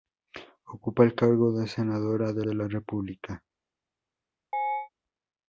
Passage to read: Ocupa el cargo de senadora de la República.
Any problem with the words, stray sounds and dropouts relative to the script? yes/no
yes